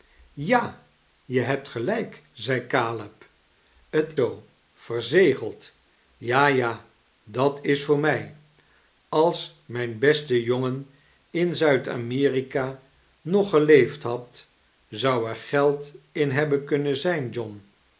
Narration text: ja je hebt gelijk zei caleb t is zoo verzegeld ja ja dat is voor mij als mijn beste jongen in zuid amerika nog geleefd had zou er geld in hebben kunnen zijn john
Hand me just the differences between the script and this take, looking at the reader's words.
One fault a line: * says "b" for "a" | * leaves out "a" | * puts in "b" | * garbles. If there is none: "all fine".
* leaves out "is"